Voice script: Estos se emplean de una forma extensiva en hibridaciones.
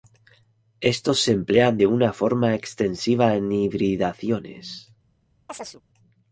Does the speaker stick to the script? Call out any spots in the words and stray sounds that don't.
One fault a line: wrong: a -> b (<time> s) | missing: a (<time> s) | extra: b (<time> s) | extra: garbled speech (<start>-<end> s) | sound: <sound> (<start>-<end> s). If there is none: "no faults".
sound: chirp (5.5-5.8 s)